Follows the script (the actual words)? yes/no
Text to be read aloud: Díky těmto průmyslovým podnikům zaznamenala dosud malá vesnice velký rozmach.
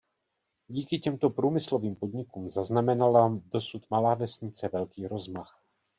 yes